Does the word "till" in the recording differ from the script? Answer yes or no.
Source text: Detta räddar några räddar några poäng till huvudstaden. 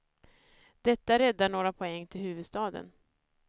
no